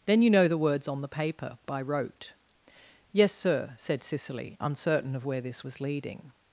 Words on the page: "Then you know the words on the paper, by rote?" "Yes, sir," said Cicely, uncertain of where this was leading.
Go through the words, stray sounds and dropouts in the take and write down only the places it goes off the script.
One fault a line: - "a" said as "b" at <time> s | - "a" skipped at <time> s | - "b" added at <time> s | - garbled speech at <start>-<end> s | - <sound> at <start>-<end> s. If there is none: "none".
none